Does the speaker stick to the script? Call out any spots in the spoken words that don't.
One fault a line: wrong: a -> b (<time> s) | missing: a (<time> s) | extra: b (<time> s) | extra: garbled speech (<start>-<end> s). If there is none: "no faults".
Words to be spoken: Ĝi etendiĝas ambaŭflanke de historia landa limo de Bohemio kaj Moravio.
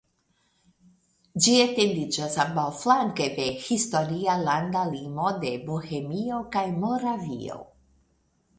no faults